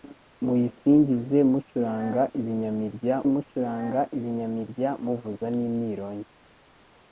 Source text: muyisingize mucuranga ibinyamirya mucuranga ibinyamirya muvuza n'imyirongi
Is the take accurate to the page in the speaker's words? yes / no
yes